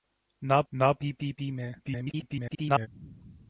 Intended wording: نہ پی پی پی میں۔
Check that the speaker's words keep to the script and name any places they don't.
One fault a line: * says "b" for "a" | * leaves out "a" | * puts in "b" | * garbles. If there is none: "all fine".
* puts in "نہ"
* garbles